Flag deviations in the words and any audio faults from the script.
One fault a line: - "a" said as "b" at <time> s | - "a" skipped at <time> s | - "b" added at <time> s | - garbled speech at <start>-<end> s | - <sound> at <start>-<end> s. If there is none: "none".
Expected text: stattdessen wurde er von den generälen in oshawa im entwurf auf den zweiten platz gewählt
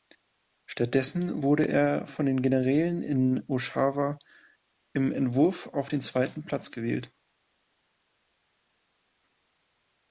none